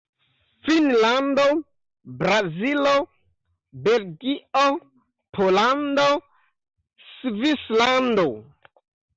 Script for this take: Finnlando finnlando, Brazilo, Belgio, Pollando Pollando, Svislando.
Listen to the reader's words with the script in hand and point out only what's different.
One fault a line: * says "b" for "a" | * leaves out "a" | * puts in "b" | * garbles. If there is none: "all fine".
* leaves out "finnlando"
* leaves out "Pollando"